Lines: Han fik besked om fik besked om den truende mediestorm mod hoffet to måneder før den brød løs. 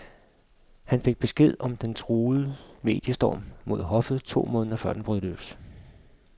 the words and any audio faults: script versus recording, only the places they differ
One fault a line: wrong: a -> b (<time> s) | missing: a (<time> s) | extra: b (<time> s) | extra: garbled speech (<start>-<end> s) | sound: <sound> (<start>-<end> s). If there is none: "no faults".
missing: fik besked om (1.8 s)